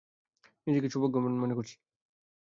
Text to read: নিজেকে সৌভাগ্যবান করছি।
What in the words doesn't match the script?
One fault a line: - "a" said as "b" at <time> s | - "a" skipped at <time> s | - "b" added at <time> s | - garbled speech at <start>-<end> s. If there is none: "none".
- "মনে" added at 1.4 s